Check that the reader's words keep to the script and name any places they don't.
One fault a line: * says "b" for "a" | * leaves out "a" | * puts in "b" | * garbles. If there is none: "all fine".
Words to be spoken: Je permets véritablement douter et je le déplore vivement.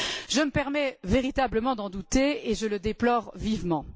* puts in "me"
* puts in "d'en"